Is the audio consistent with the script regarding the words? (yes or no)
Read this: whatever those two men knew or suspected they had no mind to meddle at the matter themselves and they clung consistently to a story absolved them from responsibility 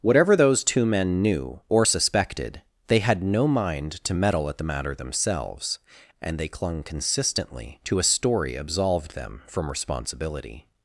yes